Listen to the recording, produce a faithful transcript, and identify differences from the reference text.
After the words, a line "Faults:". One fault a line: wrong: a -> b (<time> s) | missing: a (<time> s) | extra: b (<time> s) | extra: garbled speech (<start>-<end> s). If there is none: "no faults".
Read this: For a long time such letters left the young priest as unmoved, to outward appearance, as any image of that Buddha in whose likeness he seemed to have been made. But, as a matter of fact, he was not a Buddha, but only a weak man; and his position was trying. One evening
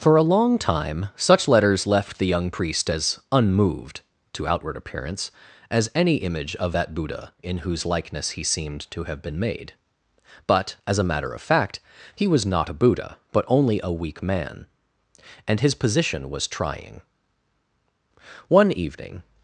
For a long time such letters left the young priest as unmoved, to outward appearance, as any image of that Buddha in whose likeness he seemed to have been made. But, as a matter of fact, he was not a Buddha, but only a weak man; and his position was trying. One evening
Faults:
no faults